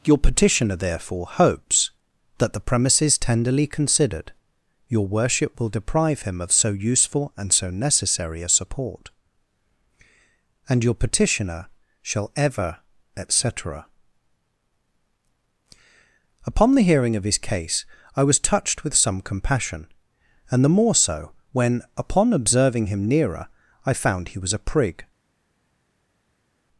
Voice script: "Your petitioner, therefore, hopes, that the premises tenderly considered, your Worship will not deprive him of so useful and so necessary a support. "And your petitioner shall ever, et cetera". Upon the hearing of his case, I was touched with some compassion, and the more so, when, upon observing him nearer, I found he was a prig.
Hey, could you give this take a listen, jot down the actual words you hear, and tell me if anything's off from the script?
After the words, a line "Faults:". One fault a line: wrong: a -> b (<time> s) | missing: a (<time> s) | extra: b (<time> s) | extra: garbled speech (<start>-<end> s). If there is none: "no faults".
"Your petitioner, therefore, hopes, that the premises tenderly considered, your Worship will deprive him of so useful and so necessary a support. "And your petitioner shall ever, et cetera". Upon the hearing of his case, I was touched with some compassion, and the more so, when, upon observing him nearer, I found he was a prig.
Faults:
missing: not (5.7 s)